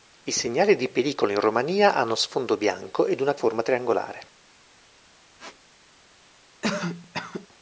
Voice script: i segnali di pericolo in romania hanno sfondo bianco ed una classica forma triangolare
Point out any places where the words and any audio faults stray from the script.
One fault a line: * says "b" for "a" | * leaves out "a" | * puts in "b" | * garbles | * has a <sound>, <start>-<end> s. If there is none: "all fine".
* leaves out "classica"
* has a squeak, 5.4-5.6 s
* has a cough, 6.6-7.5 s